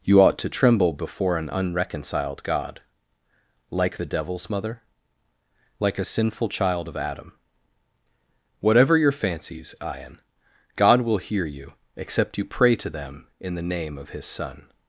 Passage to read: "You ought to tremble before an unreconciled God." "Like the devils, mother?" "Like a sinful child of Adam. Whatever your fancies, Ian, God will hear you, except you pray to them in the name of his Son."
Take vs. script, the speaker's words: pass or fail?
pass